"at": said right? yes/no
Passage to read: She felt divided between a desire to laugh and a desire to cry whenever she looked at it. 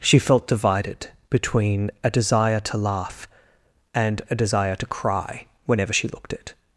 no